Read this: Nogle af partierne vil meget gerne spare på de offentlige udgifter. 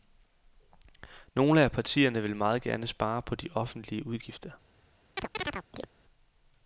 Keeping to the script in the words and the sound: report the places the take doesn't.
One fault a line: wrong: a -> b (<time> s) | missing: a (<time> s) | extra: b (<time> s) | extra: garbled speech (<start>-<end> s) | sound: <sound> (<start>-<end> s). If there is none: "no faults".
sound: chirp (5.2-5.9 s)